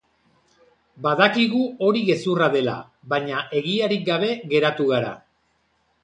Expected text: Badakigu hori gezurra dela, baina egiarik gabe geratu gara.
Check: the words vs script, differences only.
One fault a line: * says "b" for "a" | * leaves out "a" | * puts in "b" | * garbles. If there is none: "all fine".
all fine